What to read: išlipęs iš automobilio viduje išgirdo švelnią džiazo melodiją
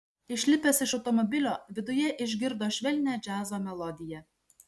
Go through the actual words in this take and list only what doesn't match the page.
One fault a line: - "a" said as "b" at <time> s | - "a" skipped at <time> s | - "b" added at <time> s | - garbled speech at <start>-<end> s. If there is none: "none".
none